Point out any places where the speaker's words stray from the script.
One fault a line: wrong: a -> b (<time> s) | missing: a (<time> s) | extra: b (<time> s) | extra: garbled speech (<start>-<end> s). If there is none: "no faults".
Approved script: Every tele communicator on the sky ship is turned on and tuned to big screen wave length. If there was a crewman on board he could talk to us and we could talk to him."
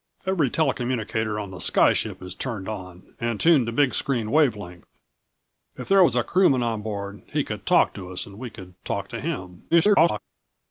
extra: garbled speech (9.7-10.2 s)